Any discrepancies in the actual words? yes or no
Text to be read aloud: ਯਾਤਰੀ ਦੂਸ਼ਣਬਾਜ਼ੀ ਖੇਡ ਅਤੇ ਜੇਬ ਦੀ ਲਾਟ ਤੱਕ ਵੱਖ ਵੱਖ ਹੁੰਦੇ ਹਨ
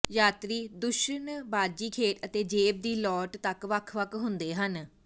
no